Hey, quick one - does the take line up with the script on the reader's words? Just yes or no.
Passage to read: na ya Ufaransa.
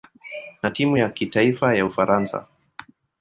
no